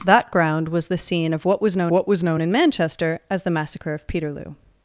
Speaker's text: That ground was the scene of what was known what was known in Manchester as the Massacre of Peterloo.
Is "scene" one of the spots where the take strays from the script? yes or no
no